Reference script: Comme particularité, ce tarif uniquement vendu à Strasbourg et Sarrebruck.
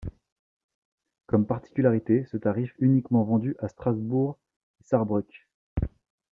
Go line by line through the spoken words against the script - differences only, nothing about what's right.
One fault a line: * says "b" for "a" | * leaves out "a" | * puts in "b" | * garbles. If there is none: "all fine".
all fine